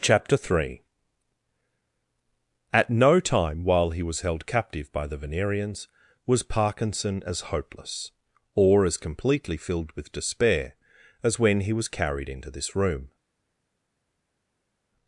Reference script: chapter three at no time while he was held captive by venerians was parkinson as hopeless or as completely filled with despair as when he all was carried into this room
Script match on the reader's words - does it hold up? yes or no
no